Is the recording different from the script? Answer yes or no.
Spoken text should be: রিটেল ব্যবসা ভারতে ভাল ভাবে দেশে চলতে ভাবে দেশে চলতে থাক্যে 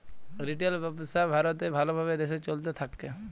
yes